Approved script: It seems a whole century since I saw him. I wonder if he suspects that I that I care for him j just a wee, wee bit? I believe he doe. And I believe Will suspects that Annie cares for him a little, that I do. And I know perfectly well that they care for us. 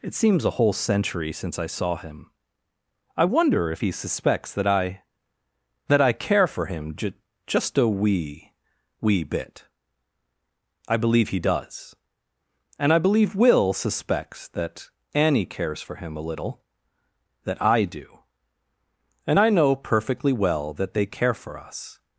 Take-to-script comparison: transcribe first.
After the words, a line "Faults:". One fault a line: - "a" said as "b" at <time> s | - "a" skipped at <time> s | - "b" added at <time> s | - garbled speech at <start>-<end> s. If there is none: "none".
It seems a whole century since I saw him. I wonder if he suspects that I that I care for him j just a wee, wee bit? I believe he does. And I believe Will suspects that Annie cares for him a little, that I do. And I know perfectly well that they care for us.
Faults:
- "doe" said as "does" at 11.4 s